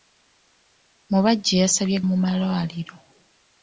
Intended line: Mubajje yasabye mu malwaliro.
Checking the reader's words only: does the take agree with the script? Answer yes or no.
yes